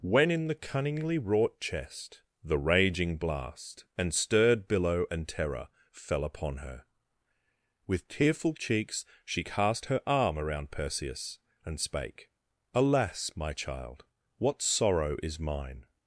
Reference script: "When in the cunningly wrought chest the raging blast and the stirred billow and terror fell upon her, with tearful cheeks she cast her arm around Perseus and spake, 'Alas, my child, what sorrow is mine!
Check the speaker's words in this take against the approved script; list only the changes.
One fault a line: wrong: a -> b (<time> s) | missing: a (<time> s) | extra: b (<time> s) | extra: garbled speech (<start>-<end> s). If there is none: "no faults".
missing: the (4.1 s)